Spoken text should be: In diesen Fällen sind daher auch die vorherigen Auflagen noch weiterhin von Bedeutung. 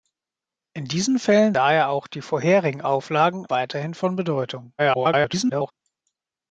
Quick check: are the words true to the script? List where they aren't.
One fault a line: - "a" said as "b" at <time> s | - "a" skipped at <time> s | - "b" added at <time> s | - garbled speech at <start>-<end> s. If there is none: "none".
- "sind" skipped at 1.5 s
- "noch" skipped at 3.5 s
- garbled speech at 4.8-5.7 s